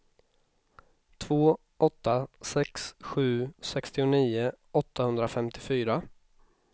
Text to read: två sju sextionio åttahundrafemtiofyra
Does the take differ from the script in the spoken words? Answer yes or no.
yes